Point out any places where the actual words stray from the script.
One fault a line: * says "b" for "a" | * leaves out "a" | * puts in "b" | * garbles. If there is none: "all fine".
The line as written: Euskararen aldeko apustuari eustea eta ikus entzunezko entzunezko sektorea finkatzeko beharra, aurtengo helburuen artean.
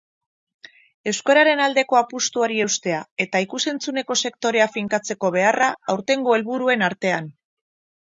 * leaves out "entzunezko"